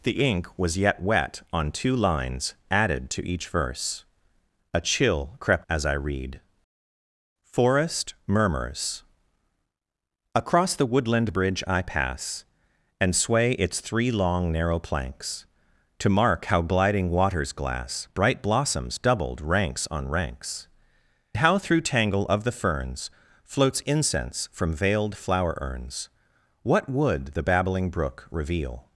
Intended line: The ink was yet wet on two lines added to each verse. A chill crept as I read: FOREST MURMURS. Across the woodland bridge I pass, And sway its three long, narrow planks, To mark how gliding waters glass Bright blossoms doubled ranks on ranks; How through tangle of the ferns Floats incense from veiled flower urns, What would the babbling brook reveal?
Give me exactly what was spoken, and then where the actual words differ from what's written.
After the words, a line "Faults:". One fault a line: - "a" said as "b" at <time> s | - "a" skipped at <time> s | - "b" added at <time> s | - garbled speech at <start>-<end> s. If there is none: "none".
The ink was yet wet on two lines added to each verse. A chill crept as I read: FOREST MURMURS. Across the woodland bridge I pass, And sway its three long, narrow planks, To mark how gliding waters glass Bright blossoms doubled ranks on ranks; How through tangle of the ferns Floats incense from veiled flower urns, What would the babbling brook reveal?
Faults:
none